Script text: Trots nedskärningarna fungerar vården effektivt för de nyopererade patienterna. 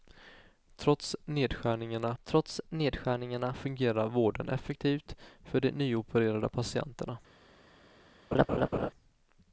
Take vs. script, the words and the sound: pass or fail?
fail